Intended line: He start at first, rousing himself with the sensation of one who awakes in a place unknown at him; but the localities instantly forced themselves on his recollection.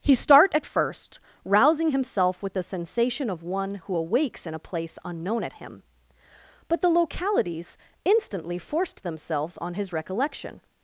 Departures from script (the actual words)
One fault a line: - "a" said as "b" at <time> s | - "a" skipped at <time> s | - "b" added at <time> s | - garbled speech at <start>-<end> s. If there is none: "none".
none